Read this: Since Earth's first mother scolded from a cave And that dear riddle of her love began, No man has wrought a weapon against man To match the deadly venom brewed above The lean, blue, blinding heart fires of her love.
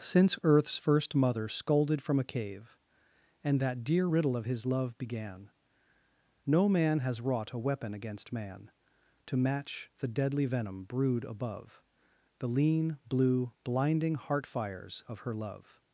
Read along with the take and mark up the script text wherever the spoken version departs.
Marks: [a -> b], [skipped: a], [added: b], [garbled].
Since Earth's first mother scolded from a cave And that dear riddle of [her -> his] love began, No man has wrought a weapon against man To match the deadly venom brewed above The lean, blue, blinding heart fires of her love.